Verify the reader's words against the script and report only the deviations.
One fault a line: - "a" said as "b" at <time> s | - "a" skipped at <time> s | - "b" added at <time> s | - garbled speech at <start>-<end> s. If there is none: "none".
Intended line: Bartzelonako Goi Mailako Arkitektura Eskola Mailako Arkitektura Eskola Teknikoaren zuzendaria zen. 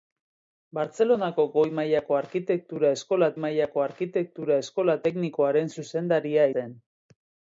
none